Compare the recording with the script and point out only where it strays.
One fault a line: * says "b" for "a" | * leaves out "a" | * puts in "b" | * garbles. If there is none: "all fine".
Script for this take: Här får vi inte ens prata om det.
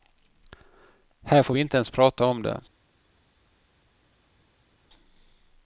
all fine